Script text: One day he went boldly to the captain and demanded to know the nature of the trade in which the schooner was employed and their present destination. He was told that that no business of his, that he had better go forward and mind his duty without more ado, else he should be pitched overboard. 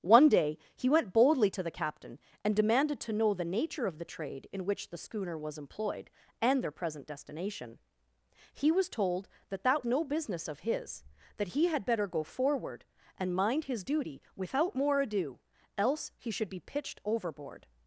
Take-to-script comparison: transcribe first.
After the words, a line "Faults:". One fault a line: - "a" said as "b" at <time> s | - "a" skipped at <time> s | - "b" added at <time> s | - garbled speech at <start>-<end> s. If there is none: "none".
One day he went boldly to the captain and demanded to know the nature of the trade in which the schooner was employed and their present destination. He was told that that no business of his, that he had better go forward and mind his duty without more ado, else he should be pitched overboard.
Faults:
none